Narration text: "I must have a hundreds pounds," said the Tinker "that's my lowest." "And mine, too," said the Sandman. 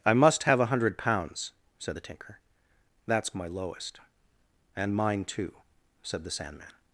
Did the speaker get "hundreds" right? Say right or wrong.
wrong